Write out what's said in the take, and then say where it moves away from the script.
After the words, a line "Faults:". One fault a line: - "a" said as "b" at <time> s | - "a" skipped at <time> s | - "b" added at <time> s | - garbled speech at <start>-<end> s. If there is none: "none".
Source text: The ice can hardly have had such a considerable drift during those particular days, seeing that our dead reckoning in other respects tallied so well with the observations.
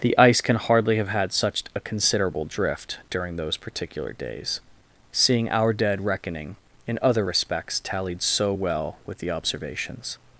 The ice can hardly have had such a considerable drift during those particular days, seeing our dead reckoning in other respects tallied so well with the observations.
Faults:
- "that" skipped at 5.5 s